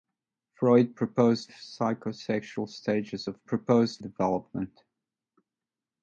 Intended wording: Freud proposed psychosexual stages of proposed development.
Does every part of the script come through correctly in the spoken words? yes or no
yes